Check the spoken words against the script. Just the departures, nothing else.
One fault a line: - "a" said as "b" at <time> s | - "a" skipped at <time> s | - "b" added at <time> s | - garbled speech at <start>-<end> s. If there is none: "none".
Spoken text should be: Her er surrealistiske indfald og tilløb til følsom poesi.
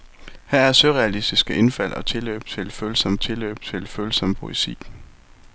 - "tilløb til følsom" added at 3.2 s